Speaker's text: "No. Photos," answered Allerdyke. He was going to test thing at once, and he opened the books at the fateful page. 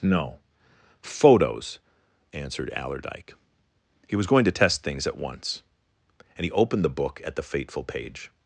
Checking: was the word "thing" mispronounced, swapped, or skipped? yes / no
yes